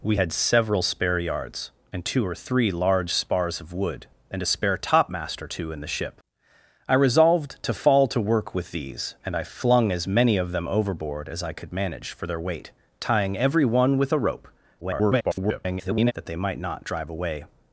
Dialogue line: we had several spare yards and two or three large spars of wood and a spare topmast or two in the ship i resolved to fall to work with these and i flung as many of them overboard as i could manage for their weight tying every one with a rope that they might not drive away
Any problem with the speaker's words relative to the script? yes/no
yes